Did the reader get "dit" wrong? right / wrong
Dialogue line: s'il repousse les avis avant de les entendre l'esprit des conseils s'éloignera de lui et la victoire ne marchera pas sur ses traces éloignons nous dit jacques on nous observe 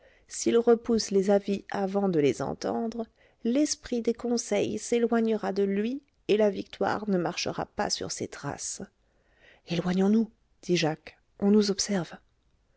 right